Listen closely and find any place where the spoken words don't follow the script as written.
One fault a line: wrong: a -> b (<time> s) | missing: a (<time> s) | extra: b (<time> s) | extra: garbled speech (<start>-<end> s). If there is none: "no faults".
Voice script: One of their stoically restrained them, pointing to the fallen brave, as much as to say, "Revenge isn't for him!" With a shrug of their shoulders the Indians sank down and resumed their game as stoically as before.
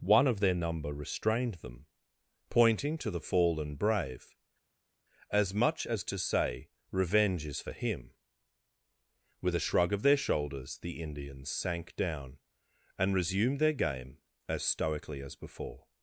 wrong: stoically -> number (0.6 s)
wrong: isn't -> is (7.4 s)